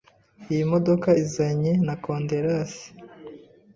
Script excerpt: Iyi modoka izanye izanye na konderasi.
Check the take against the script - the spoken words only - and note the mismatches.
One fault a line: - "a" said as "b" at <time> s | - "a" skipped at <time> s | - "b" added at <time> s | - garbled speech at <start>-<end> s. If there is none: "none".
- "izanye" skipped at 1.7 s